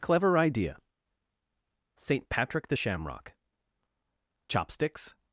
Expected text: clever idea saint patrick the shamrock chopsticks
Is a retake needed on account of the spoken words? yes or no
no